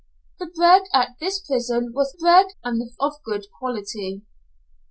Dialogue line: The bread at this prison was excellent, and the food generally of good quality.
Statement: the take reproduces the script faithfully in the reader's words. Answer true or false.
false